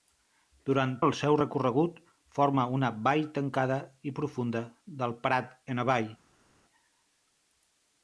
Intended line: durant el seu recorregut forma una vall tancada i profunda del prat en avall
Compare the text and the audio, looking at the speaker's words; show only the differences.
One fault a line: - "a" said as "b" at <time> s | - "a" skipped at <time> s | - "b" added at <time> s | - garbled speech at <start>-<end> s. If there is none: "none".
none